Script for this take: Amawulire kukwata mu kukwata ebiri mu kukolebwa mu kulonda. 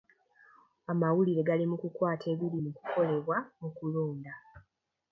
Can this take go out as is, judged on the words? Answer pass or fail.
fail